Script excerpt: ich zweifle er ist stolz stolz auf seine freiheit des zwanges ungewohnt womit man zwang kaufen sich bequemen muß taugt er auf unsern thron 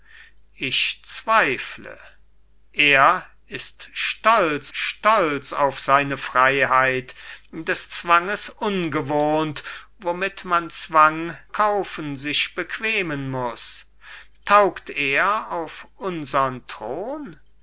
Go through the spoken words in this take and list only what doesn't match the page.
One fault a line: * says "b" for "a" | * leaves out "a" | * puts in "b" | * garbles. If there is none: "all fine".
all fine